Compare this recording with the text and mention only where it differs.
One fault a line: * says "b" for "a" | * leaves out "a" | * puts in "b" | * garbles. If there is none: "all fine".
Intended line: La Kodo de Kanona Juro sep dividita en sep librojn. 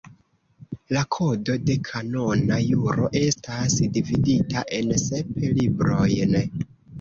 * says "estas" for "sep"